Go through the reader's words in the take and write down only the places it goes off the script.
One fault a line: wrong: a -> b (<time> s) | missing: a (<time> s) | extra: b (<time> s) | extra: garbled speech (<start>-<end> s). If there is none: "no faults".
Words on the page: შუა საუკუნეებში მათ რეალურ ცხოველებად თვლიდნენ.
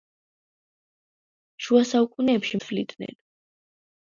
missing: მათ რეალურ ცხოველებად (2.6 s)